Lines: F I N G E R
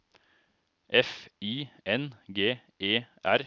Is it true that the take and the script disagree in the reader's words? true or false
false